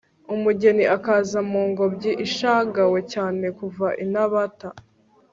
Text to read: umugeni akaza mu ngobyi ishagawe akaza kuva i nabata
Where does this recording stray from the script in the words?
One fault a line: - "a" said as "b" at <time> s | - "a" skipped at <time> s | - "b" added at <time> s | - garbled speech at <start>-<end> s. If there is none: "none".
- "akaza" said as "cyane" at 3.1 s